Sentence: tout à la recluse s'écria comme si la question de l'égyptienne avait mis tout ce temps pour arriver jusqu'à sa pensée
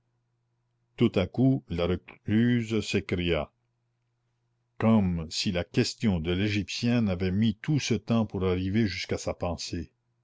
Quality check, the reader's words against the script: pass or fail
fail